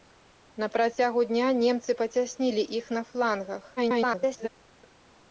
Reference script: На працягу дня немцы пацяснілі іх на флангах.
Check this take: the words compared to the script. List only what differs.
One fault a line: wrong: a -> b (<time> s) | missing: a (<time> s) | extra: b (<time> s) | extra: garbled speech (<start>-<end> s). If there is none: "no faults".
extra: garbled speech (3.8-4.5 s)